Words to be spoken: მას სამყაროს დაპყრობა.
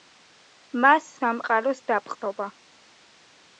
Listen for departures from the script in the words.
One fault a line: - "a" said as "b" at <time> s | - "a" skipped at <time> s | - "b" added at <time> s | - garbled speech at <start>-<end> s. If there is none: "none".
none